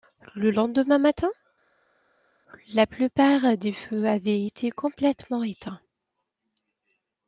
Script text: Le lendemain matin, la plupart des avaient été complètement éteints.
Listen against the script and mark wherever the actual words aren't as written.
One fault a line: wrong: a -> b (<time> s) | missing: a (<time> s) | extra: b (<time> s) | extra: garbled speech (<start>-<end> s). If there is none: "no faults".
extra: feux (3.7 s)